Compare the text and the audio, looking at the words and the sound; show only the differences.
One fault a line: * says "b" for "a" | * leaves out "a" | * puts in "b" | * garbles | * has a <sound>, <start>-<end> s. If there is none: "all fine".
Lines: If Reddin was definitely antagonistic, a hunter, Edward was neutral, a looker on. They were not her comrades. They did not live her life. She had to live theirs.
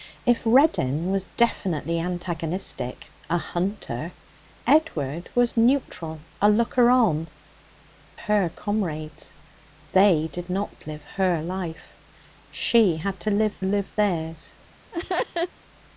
* leaves out "They were not"
* puts in "live"
* has a laugh, 14.9-15.5 s